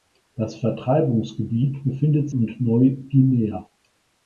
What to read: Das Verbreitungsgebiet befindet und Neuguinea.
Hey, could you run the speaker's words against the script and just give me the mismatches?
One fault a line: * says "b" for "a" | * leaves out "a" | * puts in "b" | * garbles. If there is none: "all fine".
all fine